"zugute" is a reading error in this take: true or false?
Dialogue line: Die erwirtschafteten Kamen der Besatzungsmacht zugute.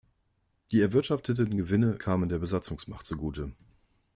false